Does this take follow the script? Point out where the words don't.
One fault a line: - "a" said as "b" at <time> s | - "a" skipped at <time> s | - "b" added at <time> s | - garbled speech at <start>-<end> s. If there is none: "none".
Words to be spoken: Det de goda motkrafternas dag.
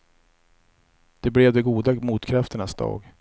- "blev" added at 1.3 s